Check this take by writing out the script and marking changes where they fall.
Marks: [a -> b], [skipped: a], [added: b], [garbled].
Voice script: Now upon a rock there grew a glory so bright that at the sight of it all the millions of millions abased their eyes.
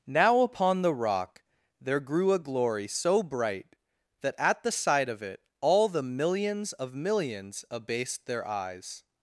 Now upon [a -> the] rock there grew a glory so bright that at the sight of it all the millions of millions abased their eyes.